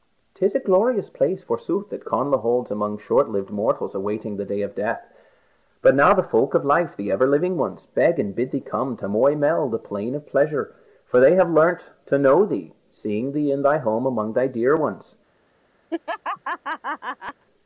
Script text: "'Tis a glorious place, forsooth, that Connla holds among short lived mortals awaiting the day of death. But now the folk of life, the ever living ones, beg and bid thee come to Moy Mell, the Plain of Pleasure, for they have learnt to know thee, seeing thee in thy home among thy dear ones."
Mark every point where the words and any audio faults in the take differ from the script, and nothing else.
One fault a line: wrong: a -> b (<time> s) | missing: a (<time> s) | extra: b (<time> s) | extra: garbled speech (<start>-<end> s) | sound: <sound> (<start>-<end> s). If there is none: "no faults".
sound: laugh (15.9-17.4 s)